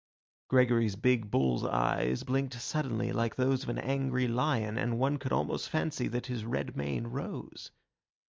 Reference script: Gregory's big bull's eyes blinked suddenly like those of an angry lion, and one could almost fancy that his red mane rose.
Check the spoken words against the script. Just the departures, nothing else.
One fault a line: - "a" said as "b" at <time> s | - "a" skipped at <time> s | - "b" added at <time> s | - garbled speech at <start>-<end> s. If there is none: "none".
none